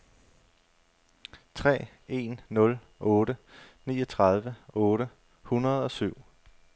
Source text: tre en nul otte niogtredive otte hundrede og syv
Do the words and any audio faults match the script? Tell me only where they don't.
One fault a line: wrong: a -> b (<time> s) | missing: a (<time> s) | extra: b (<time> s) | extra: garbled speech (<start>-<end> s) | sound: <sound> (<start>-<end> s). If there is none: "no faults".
no faults